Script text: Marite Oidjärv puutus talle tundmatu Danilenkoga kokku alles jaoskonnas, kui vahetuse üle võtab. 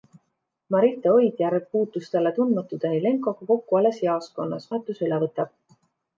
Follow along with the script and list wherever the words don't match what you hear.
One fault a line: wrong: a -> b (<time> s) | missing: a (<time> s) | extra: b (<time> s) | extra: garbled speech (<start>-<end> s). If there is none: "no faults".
missing: kui (4.7 s)